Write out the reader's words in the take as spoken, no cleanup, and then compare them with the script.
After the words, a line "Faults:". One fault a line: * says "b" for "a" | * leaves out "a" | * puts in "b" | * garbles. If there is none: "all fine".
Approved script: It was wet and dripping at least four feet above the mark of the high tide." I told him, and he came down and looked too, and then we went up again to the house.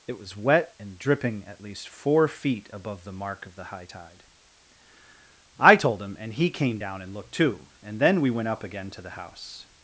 It was wet and dripping at least four feet above the mark of the high tide." I told him, and he came down and looked too, and then we went up again to the house.
Faults:
all fine